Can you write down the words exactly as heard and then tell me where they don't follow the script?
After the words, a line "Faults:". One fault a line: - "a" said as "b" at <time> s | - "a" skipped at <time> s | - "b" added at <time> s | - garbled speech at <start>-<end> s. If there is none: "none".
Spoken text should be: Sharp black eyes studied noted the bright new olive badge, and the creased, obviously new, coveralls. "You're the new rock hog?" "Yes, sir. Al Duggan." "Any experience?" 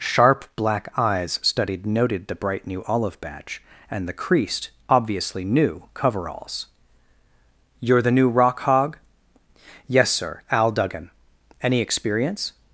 Sharp black eyes studied noted the bright new olive badge, and the creased, obviously new, coveralls. "You're the new rock hog?" "Yes, sir. Al Duggan." "Any experience?"
Faults:
none